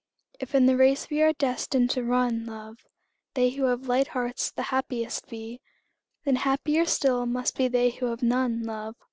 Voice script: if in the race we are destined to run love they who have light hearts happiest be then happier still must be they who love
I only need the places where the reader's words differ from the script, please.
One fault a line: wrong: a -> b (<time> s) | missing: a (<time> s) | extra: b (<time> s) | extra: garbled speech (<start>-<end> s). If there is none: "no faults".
extra: the (4.5 s)
extra: have none (8.1 s)